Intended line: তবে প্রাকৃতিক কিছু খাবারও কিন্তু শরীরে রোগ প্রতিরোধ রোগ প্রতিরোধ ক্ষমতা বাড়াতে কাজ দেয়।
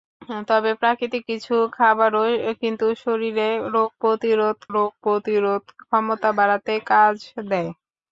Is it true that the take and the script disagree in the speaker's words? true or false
false